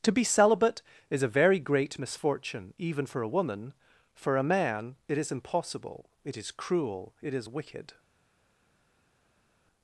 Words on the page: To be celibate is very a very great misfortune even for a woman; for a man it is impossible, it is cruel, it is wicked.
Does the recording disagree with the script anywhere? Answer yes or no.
yes